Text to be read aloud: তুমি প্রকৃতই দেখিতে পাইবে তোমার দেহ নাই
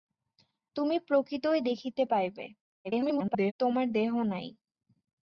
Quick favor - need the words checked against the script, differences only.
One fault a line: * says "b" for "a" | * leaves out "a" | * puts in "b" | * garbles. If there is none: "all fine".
* garbles